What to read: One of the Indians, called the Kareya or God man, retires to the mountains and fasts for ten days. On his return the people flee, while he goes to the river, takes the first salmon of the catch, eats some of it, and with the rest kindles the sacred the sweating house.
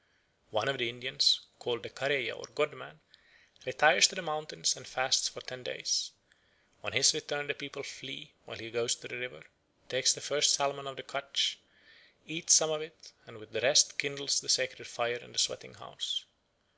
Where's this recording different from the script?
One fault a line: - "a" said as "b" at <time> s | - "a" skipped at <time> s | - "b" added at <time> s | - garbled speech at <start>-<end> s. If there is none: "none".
- "fire in" added at 14.9 s